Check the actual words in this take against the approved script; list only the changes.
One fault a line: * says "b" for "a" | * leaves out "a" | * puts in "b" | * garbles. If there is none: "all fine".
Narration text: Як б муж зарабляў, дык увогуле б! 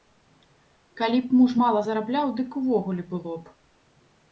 * says "Калі" for "Як"
* puts in "мала"
* puts in "было"